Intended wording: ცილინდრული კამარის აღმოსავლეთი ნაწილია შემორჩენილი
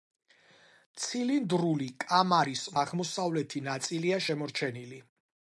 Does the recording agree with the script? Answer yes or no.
yes